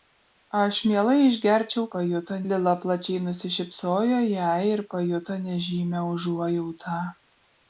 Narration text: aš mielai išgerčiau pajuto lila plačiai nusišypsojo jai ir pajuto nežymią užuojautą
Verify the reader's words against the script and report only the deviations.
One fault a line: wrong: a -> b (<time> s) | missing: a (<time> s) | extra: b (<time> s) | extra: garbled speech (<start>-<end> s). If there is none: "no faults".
no faults